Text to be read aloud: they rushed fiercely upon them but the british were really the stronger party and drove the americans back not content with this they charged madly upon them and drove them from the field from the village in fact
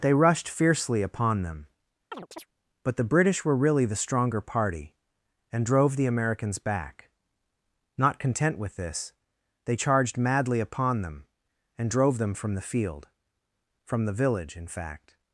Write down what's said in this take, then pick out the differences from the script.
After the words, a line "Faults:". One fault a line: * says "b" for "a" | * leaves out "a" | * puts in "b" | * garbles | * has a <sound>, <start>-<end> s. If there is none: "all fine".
they rushed fiercely upon them but the british were really the stronger party and drove the americans back not content with this they charged madly upon them and drove them from the field from the village in fact
Faults:
* has a chirp, 2.1-2.5 s